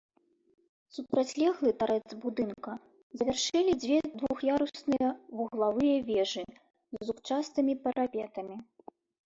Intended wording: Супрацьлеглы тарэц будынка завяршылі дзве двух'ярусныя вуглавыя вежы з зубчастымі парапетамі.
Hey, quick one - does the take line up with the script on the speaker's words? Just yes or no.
yes